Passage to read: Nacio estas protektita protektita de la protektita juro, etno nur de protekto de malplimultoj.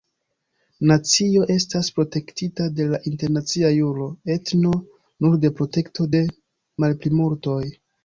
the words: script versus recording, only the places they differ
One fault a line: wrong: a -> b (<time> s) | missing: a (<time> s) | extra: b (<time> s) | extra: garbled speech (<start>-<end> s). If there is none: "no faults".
missing: protektita (2.7 s)
wrong: protektita -> internacia (3.1 s)